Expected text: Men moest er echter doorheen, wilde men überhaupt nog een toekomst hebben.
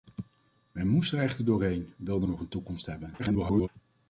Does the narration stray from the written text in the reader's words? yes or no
yes